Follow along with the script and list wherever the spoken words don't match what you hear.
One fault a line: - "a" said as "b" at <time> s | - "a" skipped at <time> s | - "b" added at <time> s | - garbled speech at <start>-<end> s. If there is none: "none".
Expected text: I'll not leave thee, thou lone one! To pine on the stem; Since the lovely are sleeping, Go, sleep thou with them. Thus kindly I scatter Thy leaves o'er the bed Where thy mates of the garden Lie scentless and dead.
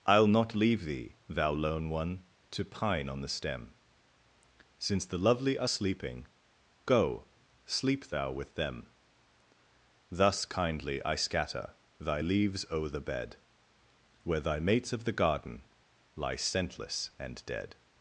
none